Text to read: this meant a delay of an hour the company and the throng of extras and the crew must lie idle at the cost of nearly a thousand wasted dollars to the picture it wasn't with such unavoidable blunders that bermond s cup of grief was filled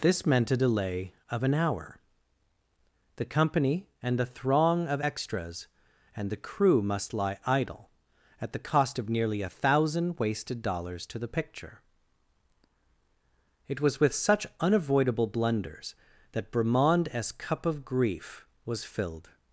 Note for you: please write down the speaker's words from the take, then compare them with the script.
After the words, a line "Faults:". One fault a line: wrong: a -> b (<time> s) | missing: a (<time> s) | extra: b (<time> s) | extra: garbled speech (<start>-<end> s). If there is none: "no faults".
this meant a delay of an hour the company and the throng of extras and the crew must lie idle at the cost of nearly a thousand wasted dollars to the picture it was with such unavoidable blunders that bermond s cup of grief was filled
Faults:
wrong: wasn't -> was (13.8 s)